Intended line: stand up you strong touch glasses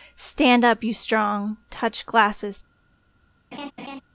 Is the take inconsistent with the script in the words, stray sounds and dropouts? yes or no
yes